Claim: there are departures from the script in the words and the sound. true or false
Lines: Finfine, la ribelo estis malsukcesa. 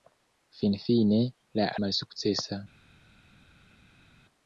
true